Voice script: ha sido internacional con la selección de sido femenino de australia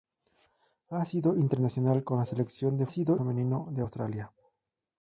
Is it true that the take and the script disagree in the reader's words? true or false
false